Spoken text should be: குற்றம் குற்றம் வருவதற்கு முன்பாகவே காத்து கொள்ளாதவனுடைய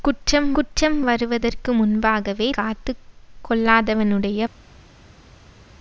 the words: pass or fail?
pass